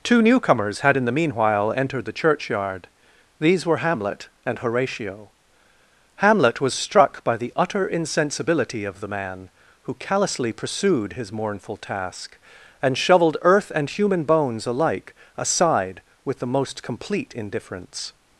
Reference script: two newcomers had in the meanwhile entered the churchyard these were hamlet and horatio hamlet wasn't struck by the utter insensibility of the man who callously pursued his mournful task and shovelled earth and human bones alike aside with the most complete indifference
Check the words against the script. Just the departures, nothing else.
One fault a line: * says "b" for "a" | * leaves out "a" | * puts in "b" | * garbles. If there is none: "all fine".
* says "was" for "wasn't"